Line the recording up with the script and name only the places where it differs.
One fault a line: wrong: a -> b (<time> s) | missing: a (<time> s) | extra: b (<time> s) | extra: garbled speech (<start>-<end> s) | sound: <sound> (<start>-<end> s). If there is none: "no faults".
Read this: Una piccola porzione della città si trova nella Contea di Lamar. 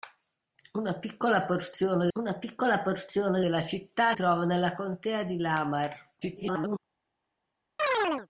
extra: una piccola porzione (2.1 s)
missing: si (4.1 s)
extra: garbled speech (6.2-6.8 s)
sound: chirp (7.8-8.3 s)